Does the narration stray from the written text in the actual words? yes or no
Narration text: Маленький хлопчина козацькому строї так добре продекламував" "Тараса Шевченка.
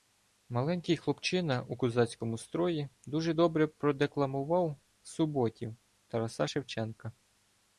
yes